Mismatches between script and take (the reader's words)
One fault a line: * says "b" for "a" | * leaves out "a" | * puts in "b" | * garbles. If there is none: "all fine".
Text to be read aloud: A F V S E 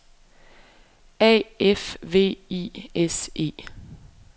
* puts in "I"